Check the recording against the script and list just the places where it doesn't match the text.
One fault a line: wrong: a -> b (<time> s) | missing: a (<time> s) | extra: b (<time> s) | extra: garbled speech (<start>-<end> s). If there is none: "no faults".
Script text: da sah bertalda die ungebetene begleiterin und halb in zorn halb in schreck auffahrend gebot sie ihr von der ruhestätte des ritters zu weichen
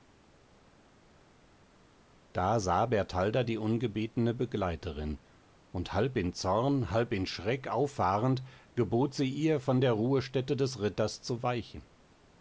no faults